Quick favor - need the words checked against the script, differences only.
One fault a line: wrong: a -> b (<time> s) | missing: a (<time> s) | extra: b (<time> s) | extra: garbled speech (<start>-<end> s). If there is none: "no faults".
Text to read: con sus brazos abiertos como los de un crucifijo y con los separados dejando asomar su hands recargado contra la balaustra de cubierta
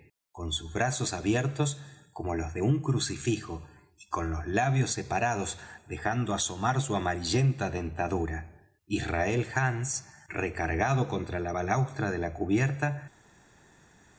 extra: labios (4.5 s)
extra: amarillenta dentadura israel (7.0 s)
extra: la (12.2 s)